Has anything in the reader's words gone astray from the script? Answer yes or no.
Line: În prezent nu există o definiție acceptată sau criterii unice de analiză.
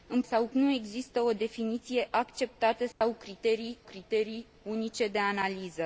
yes